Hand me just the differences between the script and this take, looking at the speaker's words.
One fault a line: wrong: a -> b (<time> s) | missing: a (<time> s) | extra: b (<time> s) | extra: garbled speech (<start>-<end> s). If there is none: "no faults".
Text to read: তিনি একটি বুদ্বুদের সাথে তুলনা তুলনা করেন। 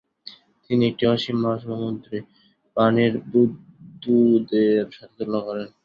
extra: অসীম মহাসমুদ্রে পানির (1.1 s)
missing: তুলনা (5.4 s)